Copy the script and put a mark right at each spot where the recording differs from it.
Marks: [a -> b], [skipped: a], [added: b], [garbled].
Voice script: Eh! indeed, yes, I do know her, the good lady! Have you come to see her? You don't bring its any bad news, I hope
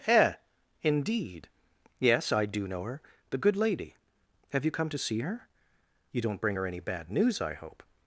Eh! indeed, yes, I do know her, the good lady! Have you come to see her? You don't bring [its -> her] any bad news, I hope